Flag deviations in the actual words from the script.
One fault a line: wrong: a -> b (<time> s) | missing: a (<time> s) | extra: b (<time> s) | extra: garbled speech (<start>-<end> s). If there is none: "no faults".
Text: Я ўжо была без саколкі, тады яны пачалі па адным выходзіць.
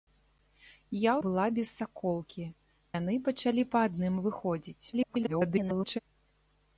missing: ўжо (1.1 s)
missing: тады (2.5 s)
extra: garbled speech (4.9-6.0 s)